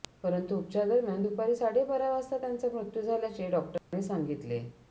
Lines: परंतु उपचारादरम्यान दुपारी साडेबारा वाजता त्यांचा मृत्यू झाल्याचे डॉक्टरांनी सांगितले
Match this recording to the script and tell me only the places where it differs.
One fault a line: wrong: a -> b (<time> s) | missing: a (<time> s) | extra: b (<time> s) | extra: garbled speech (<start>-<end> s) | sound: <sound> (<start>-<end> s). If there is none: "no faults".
sound: dropout (3.8-3.9 s)